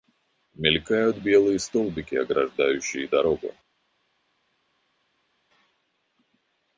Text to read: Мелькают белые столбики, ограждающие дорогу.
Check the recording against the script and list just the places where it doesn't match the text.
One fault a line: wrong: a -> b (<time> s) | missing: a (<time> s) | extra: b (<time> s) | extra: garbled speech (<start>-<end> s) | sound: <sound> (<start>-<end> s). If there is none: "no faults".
no faults